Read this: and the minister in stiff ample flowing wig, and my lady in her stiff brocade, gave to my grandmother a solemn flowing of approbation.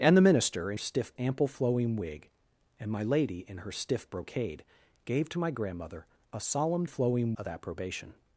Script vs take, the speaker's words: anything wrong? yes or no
no